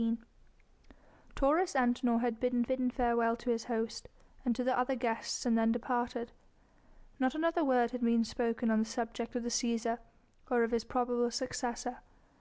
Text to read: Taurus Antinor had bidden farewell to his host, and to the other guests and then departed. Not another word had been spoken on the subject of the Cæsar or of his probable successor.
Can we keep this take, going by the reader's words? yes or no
no